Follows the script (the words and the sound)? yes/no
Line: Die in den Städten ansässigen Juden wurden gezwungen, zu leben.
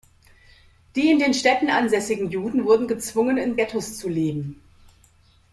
no